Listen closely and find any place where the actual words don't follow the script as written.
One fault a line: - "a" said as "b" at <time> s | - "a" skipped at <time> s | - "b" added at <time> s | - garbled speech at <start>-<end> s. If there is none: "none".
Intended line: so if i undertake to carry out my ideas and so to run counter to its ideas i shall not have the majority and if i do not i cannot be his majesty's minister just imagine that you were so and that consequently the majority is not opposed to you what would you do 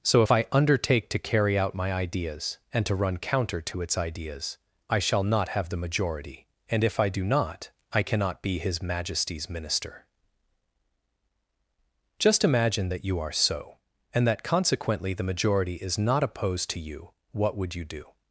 - "so" skipped at 2.9 s
- "were" said as "are" at 13.2 s